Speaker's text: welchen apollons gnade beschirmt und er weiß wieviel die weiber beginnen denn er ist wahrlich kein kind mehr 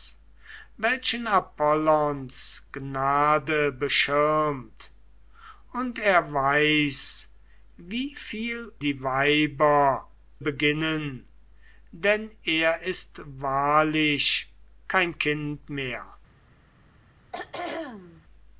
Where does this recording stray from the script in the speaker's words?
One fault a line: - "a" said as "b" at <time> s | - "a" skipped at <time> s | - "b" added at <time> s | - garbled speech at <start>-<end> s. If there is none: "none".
none